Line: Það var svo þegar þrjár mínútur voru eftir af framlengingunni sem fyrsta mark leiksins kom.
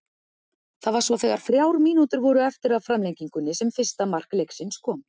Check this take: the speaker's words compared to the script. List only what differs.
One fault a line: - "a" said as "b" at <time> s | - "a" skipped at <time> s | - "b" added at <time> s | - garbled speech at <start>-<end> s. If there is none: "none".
none